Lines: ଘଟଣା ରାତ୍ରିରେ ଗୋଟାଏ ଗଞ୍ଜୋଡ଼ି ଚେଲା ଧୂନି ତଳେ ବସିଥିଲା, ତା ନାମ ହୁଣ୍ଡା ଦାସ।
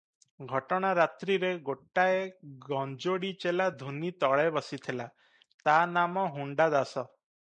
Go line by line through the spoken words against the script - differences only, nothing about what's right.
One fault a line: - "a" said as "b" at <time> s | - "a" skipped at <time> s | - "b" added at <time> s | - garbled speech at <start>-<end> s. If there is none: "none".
none